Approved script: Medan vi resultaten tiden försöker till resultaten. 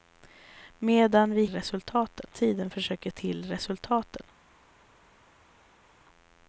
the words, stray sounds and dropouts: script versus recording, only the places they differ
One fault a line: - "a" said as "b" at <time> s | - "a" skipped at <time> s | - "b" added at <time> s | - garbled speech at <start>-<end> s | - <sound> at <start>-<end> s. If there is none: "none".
none